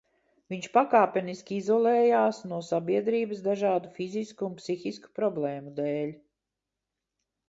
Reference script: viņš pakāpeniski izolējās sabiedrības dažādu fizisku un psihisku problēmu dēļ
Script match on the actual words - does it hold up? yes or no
no